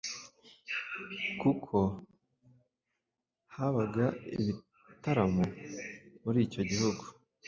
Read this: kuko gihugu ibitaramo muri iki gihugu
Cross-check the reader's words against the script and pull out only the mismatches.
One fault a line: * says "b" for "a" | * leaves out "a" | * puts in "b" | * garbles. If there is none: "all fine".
* says "habaga" for "gihugu"
* says "icyo" for "iki"